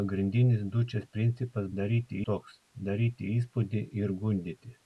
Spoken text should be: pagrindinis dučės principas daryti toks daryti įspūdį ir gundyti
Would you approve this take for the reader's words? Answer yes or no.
yes